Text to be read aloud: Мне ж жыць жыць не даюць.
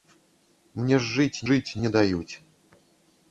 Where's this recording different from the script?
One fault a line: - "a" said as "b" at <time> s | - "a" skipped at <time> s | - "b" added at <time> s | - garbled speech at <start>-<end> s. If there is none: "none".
none